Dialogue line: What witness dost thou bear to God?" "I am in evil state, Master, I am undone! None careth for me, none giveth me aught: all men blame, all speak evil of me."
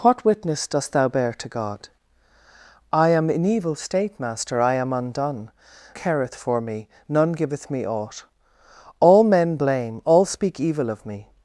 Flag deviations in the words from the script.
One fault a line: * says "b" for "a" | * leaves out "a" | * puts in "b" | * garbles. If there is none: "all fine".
* leaves out "None"